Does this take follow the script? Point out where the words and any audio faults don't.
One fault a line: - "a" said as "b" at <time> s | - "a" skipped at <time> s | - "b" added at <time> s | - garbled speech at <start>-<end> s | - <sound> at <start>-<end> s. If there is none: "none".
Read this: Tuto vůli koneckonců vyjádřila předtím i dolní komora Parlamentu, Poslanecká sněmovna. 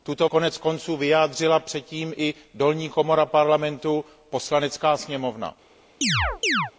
- "vůli" skipped at 0.3 s
- chirp at 6.0-6.7 s